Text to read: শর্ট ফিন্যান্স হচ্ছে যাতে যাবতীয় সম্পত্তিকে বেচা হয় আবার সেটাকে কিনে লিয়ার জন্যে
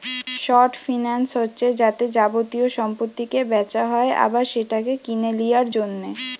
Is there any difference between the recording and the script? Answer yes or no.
no